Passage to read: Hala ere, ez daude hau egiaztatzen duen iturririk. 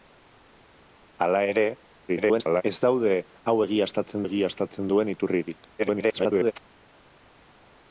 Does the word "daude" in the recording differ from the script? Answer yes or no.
no